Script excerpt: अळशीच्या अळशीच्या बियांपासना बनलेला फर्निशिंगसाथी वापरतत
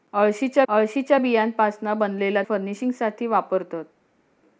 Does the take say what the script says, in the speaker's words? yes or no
yes